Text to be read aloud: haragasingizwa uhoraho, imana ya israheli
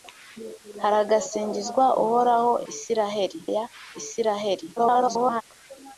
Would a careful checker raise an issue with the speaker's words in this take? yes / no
yes